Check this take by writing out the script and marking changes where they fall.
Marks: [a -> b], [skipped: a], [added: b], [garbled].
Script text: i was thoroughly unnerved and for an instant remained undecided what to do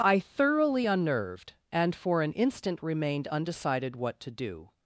i [skipped: was] thoroughly unnerved and for an instant remained undecided what to do